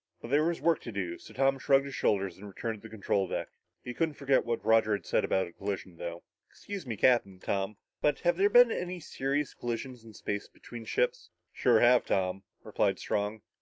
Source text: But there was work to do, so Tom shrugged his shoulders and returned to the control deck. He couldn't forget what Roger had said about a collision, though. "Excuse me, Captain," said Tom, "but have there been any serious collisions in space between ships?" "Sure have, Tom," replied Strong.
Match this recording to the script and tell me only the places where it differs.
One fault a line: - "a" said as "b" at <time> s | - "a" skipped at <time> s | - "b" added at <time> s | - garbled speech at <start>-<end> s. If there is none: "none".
- "said" skipped at 7.4 s